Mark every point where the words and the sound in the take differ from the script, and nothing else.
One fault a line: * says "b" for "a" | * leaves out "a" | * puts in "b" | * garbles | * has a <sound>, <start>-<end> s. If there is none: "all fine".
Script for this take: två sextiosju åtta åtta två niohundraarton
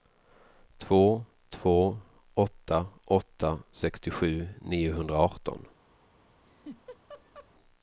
* says "två" for "sextiosju"
* says "sextiosju" for "två"
* has a laugh, 6.4-7.5 s